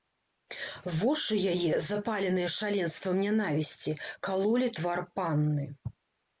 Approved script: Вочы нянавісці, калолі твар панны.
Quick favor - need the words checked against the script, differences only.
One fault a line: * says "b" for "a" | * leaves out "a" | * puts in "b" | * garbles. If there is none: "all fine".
* puts in "яе запаленыя шаленствам"